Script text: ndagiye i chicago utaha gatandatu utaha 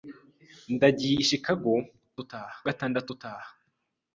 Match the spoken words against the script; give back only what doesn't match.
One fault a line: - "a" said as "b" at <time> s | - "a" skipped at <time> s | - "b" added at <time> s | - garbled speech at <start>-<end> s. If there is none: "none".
none